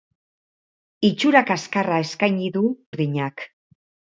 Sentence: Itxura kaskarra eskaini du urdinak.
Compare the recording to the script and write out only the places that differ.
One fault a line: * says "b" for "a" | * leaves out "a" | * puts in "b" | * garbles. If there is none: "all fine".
all fine